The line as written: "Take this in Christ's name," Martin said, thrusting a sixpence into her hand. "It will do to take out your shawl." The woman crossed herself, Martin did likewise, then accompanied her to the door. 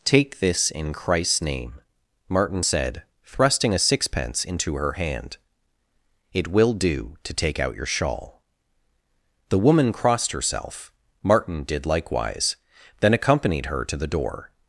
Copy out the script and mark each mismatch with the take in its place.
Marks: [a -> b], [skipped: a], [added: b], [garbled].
"Take this in Christ's name," Martin said, thrusting a sixpence into her hand. "It will do to take out your shawl." The woman crossed herself, Martin did likewise, then accompanied her to the door.